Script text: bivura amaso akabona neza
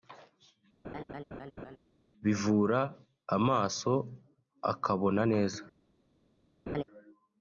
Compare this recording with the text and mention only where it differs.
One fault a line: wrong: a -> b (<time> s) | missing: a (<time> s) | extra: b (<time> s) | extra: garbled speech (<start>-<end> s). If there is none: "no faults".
no faults